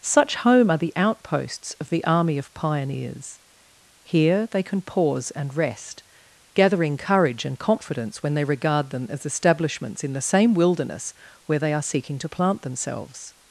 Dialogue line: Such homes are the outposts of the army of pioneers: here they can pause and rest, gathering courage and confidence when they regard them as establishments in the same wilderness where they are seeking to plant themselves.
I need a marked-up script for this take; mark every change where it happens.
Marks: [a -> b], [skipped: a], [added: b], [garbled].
Such [homes -> home] are the outposts of the army of pioneers: here they can pause and rest, gathering courage and confidence when they regard them as establishments in the same wilderness where they are seeking to plant themselves.